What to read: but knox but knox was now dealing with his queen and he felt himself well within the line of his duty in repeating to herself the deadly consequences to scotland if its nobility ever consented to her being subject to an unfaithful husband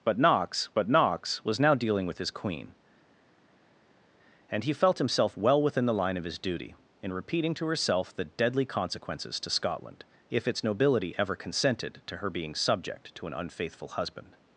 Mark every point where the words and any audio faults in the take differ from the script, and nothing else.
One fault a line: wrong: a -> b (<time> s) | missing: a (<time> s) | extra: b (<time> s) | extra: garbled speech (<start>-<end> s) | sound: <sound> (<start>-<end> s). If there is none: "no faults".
no faults